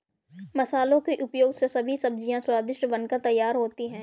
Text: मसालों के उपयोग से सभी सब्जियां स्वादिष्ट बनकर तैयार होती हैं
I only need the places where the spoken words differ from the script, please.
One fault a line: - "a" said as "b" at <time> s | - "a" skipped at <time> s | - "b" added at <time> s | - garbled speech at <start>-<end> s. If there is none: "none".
none